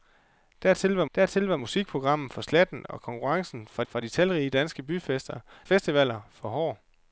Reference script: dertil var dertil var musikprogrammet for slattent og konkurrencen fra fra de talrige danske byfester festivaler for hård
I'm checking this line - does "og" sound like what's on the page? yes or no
yes